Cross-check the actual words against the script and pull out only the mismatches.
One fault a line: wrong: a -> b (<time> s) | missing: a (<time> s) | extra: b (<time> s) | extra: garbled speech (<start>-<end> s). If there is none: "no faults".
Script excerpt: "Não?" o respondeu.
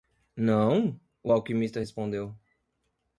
extra: alquimista (1.3 s)